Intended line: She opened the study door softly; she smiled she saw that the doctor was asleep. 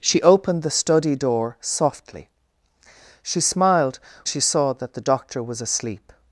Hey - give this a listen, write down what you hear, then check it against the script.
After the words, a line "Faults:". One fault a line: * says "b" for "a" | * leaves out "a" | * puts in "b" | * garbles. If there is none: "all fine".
She opened the study door softly; she smiled she saw that the doctor was asleep.
Faults:
all fine